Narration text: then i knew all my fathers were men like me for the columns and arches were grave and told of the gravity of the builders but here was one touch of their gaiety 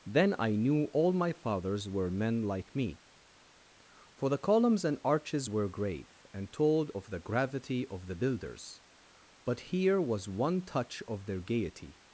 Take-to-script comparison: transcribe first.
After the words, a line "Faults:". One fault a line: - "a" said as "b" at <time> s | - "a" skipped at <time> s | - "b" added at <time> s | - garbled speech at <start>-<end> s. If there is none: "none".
then i knew all my fathers were men like me for the columns and arches were grave and told of the gravity of the builders but here was one touch of their gaiety
Faults:
none